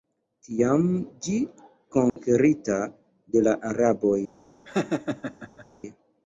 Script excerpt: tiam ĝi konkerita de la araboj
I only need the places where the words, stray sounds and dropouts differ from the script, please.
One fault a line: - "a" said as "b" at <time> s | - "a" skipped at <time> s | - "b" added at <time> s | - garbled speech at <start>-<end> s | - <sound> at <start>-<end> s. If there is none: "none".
- dropout at 2.1-2.2 s
- laugh at 4.6-5.7 s